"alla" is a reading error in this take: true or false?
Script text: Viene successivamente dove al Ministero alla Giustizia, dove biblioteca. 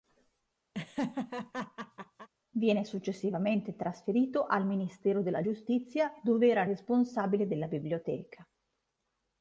true